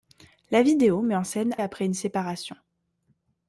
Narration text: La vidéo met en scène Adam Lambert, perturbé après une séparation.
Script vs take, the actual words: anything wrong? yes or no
yes